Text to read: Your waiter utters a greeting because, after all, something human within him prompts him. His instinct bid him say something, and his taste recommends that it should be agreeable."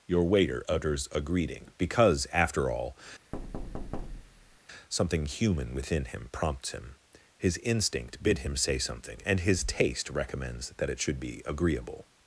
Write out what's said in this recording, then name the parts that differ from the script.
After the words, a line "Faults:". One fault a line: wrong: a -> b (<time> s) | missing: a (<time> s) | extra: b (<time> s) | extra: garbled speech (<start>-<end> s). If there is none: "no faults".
Your waiter utters a greeting because, after all, something human within him prompts him. His instinct bid him say something, and his taste recommends that it should be agreeable."
Faults:
no faults